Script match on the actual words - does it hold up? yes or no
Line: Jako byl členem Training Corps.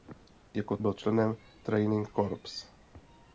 yes